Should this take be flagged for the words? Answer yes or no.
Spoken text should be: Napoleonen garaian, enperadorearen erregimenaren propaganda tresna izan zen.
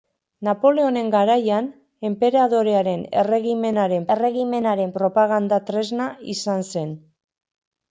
yes